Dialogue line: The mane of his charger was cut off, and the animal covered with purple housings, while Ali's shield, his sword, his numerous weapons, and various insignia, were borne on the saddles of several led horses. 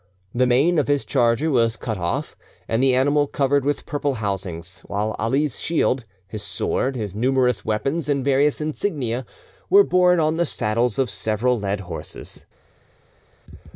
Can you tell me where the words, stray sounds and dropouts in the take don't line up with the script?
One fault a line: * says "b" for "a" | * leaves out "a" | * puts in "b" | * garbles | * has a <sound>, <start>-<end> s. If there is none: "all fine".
all fine